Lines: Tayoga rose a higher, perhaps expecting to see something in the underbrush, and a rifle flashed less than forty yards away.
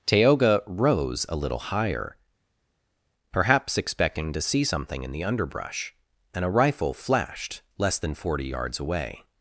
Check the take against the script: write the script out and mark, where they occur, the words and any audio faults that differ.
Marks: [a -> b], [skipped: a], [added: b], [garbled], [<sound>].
Tayoga rose a [added: little] higher, perhaps expecting to see something in the underbrush, and a rifle flashed less than forty yards away.